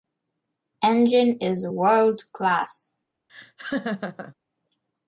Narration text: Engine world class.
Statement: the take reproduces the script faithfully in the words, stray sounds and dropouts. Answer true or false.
false